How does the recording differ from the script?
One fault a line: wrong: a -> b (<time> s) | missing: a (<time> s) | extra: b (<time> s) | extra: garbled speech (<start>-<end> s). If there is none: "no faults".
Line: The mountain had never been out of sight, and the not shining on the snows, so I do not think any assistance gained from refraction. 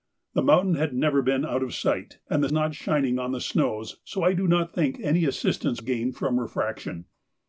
no faults